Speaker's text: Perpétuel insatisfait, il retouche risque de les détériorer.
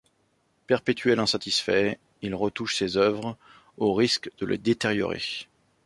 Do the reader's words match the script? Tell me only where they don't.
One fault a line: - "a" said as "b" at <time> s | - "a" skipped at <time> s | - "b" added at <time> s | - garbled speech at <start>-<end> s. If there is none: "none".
- "ses œuvres au" added at 2.8 s